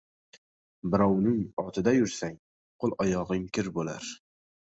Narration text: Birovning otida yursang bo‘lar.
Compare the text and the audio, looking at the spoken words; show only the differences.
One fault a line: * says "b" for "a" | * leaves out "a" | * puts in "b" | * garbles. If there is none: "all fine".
* puts in "qo‘l oyog‘ing kir"